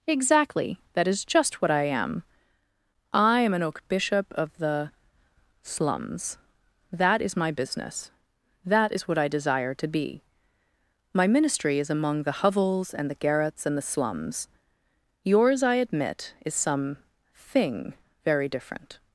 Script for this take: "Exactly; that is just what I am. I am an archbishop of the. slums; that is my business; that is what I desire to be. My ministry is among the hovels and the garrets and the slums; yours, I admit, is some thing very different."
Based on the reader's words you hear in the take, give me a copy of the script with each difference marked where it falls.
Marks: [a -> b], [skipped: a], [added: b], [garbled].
"Exactly; that is just what I am. I am an [archbishop -> oak bishop] of the. slums; that is my business; that is what I desire to be. My ministry is among the hovels and the garrets and the slums; yours, I admit, is some thing very different."